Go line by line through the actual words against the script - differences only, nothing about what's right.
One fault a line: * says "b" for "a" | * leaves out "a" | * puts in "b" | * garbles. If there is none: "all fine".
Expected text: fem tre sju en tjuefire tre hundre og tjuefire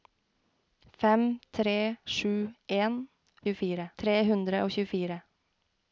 all fine